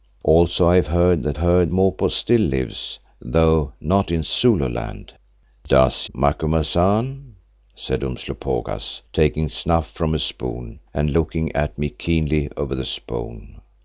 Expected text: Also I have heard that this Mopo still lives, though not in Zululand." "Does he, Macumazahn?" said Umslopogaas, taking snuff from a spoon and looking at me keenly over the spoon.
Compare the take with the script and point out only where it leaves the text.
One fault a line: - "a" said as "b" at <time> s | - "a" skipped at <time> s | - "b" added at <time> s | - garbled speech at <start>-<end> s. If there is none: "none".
- "this" said as "heard" at 1.4 s
- "he" skipped at 6.1 s